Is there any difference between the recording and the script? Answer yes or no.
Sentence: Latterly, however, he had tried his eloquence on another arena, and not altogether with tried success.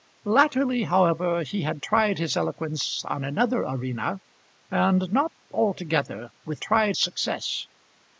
no